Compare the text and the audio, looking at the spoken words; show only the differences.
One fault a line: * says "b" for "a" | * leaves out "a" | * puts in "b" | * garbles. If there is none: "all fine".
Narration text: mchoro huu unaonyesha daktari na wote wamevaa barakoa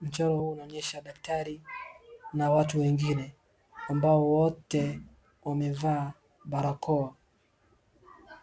* puts in "watu wengine ambao"